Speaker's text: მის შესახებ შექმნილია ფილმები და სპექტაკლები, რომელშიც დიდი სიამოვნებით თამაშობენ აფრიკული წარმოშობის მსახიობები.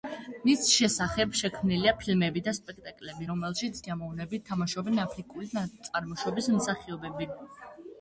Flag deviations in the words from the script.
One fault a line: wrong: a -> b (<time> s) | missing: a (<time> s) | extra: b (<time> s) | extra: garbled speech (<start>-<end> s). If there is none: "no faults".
missing: დიდი (3.8 s)